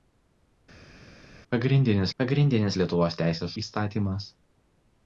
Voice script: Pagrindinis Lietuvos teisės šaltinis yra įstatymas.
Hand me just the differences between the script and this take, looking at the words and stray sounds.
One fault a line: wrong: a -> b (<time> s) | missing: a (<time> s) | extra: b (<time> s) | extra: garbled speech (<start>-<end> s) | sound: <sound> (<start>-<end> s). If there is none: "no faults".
extra: pagrindinis (2.2 s)
missing: šaltinis yra (3.5 s)